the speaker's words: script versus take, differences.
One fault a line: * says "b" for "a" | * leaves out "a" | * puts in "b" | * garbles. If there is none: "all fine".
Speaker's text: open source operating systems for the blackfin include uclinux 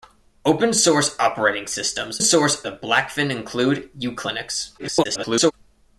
* says "source" for "for"
* garbles